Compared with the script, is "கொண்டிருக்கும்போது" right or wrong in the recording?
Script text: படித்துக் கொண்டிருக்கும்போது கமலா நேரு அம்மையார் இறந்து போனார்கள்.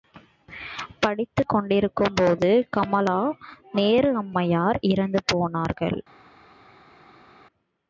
right